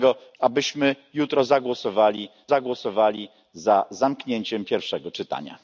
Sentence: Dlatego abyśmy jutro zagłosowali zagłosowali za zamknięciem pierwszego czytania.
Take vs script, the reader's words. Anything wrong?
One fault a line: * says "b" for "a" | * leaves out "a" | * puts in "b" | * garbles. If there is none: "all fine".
all fine